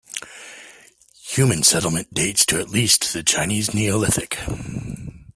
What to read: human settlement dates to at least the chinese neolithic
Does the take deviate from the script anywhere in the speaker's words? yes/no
no